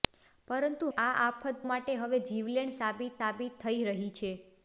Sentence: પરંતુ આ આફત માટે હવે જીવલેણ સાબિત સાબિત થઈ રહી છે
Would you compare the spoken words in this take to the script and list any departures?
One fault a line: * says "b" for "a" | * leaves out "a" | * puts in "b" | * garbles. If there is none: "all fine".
all fine